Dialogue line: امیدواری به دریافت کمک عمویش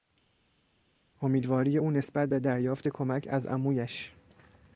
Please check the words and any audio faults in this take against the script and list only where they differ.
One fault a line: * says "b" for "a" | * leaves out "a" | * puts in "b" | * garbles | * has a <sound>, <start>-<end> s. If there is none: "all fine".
* puts in "او نسبت"
* puts in "از"